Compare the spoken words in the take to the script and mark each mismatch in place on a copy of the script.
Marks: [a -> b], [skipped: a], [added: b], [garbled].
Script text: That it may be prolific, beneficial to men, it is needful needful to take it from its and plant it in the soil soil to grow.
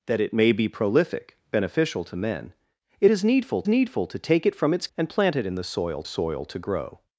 That it may be prolific, beneficial to men, it is needful needful to take it from its and plant it in the soil soil to grow.